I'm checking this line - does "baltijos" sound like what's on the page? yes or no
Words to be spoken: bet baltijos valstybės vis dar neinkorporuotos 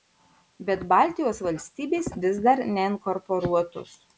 yes